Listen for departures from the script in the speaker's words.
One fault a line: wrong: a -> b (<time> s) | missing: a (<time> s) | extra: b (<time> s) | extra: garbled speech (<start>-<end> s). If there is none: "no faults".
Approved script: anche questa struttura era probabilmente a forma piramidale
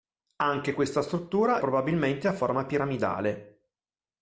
missing: era (1.6 s)